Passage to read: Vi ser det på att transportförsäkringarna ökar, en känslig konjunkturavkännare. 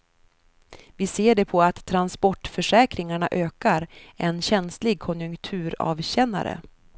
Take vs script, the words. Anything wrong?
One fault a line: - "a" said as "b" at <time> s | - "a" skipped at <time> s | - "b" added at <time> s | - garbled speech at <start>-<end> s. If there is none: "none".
none